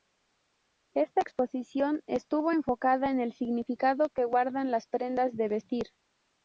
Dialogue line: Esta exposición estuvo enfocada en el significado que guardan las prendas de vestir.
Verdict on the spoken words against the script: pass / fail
pass